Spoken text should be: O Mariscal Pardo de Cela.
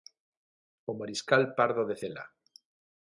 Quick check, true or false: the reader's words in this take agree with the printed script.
true